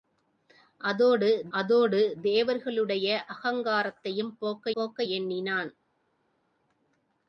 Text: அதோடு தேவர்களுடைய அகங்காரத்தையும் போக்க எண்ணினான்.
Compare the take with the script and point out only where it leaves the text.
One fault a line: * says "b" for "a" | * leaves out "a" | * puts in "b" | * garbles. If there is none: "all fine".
* puts in "அதோடு"
* puts in "போக்க"